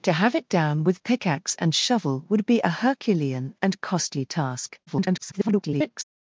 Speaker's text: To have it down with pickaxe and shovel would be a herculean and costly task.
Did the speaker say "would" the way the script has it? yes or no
yes